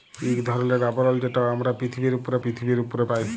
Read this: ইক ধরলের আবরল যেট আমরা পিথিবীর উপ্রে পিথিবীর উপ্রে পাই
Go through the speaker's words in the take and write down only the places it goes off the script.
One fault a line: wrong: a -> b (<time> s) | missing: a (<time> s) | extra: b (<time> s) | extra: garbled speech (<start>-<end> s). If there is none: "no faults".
no faults